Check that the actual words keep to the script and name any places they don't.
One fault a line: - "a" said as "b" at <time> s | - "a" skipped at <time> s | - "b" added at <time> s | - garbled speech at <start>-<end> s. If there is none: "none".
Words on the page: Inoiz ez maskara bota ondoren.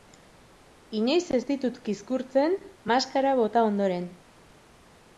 - "ditut kizkurtzen" added at 1.5 s